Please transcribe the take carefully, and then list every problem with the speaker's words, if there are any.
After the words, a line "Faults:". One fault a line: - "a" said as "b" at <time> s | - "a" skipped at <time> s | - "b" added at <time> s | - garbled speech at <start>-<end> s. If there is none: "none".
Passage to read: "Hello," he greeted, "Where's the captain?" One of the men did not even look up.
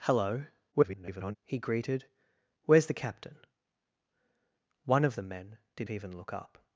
"Hello," [garbled] he greeted, "Where's the captain?" One of the men did even look up.
Faults:
- garbled speech at 0.7-1.4 s
- "not" skipped at 5.9 s